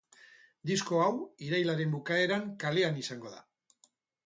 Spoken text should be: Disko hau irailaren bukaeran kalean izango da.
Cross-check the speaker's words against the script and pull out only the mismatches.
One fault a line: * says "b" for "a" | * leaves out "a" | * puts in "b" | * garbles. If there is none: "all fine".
all fine